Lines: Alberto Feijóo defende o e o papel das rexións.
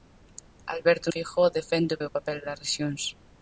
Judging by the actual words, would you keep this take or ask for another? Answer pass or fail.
pass